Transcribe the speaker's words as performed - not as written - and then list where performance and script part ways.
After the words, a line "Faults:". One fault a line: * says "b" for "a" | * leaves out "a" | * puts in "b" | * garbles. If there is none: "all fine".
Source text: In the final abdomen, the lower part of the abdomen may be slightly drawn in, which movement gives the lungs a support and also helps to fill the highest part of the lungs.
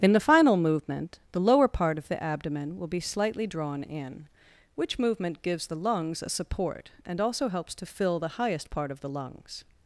In the final movement, the lower part of the abdomen will be slightly drawn in, which movement gives the lungs a support and also helps to fill the highest part of the lungs.
Faults:
* says "movement" for "abdomen"
* says "will" for "may"